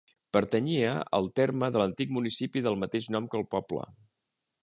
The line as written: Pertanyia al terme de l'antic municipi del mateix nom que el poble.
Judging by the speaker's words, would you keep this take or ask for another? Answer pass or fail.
pass